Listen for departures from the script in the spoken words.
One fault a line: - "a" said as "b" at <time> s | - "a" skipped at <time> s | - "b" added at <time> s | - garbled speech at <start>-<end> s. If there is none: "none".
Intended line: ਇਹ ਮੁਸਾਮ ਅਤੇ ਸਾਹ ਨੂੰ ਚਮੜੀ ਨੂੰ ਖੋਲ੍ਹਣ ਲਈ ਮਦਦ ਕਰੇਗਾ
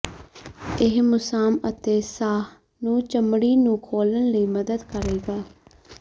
none